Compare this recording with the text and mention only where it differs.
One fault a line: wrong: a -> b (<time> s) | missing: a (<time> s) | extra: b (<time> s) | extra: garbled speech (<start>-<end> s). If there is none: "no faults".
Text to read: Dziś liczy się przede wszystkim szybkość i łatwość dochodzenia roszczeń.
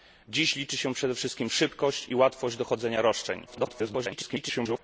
extra: garbled speech (3.5-4.8 s)